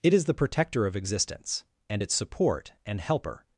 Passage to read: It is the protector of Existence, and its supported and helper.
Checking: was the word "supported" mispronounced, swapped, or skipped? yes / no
yes